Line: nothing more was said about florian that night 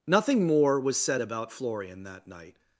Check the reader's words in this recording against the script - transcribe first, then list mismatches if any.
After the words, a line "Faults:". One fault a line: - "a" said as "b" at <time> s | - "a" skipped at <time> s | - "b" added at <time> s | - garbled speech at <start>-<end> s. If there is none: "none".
nothing more was said about florian that night
Faults:
none